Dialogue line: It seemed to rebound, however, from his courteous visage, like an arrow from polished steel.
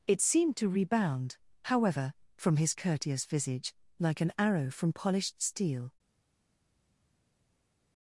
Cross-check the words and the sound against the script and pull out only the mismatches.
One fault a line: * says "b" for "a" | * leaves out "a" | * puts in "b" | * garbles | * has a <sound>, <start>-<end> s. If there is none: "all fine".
all fine